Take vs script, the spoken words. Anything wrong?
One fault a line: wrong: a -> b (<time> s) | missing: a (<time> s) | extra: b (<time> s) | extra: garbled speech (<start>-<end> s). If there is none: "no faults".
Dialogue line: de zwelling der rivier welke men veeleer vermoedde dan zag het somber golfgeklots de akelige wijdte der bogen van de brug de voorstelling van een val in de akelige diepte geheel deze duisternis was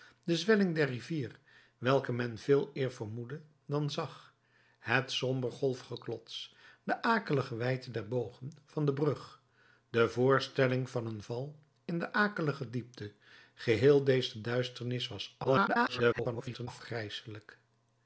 extra: garbled speech (15.4-16.7 s)